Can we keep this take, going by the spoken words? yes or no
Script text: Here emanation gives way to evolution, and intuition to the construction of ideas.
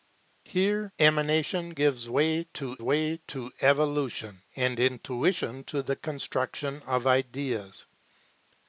no